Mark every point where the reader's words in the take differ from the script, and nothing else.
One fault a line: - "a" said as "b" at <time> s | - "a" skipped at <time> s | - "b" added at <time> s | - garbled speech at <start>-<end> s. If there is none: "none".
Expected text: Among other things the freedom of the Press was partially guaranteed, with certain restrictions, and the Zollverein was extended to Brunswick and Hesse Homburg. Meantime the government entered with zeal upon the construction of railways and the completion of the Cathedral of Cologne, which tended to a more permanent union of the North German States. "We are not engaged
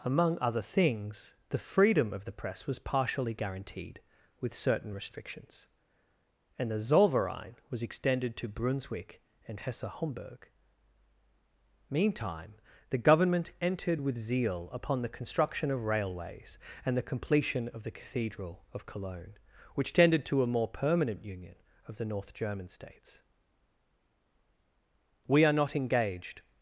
none